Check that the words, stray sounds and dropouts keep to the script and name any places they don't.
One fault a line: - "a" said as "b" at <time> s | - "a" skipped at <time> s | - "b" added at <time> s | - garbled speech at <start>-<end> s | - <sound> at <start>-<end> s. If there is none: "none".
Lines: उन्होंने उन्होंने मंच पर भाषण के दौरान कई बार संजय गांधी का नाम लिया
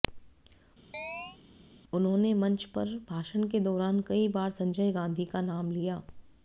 - chirp at 0.9-1.4 s
- "उन्होंने" skipped at 2.3 s